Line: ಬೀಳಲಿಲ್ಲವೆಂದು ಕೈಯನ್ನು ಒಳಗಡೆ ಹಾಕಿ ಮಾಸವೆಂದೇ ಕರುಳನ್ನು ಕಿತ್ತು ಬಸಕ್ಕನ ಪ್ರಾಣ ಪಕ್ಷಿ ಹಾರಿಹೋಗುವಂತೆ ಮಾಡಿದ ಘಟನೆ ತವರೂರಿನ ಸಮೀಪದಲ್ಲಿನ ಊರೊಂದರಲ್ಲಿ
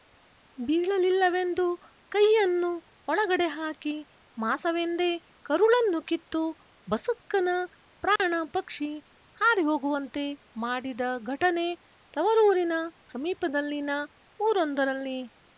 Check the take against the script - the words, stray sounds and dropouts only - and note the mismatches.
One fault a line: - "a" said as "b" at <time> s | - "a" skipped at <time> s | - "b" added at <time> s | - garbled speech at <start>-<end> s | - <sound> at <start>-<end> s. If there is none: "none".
- dropout at 8.2-8.2 s